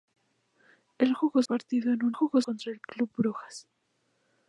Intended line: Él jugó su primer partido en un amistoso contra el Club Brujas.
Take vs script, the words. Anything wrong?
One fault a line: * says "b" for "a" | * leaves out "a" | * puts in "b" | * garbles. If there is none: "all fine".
* leaves out "su primer"
* says "jugó" for "amistoso"